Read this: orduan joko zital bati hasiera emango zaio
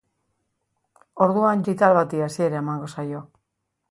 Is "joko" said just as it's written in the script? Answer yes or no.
no